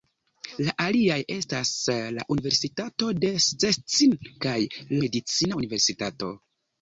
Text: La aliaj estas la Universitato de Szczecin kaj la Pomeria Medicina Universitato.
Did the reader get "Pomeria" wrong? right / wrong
wrong